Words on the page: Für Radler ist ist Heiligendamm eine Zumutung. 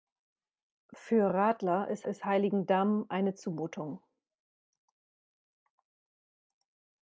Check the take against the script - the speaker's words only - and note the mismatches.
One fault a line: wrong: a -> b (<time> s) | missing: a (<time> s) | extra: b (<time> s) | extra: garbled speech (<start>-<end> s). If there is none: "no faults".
no faults